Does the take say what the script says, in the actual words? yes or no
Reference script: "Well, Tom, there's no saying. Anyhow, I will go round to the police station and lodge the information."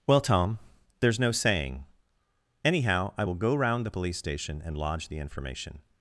no